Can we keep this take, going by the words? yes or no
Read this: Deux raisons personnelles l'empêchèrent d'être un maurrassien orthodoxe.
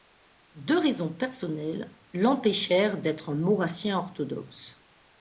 yes